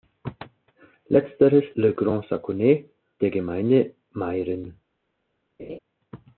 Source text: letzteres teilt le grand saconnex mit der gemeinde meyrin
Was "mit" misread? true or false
true